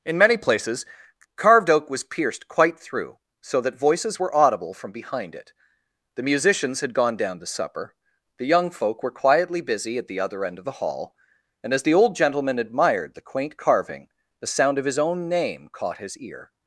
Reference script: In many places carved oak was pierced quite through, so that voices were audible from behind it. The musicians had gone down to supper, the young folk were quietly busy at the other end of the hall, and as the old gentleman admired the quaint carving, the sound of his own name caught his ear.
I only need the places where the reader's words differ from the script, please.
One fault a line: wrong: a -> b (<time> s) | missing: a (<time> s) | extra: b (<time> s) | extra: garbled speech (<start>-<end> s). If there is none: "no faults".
no faults